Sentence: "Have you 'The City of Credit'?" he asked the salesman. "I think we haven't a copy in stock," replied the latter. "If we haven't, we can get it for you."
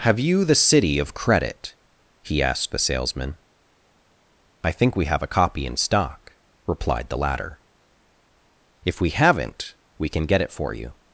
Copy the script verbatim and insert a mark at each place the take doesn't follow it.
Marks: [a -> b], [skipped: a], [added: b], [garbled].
"Have you 'The City of Credit'?" he asked the salesman. "I think we [haven't -> have] a copy in stock," replied the latter. "If we haven't, we can get it for you."